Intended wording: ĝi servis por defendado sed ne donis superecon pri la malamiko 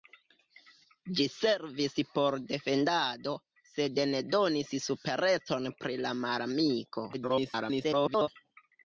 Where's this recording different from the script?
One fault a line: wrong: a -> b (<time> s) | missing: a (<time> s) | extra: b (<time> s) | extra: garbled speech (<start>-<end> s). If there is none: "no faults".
extra: garbled speech (7.1-8.3 s)